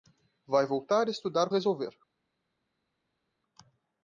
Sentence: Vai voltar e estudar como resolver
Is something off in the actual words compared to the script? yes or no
yes